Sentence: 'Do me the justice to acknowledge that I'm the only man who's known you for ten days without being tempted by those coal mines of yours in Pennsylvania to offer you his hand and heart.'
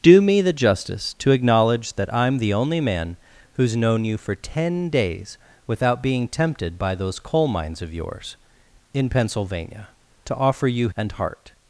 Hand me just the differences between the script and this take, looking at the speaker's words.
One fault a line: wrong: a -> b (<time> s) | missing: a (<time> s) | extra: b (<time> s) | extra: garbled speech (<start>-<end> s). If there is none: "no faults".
missing: his hand (10.9 s)